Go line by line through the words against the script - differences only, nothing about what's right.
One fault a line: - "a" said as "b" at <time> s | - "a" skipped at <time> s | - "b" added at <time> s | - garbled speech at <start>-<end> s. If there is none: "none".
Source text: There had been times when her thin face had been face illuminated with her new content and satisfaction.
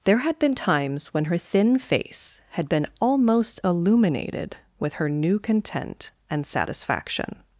- "face" said as "almost" at 3.0 s